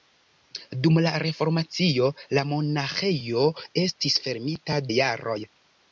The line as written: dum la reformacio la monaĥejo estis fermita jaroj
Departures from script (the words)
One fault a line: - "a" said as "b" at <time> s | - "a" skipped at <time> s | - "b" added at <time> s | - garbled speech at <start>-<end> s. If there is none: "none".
none